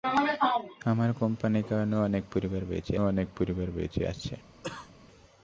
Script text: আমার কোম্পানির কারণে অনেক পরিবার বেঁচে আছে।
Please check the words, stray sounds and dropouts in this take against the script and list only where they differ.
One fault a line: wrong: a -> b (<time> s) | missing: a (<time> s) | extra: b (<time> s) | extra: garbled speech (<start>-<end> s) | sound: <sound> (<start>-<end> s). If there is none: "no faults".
extra: অনেক পরিবার বেঁচে (3.0 s)
sound: cough (4.6-4.9 s)